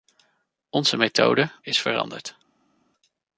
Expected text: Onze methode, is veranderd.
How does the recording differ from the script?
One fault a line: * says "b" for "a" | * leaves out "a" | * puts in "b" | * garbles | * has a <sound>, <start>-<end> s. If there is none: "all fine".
all fine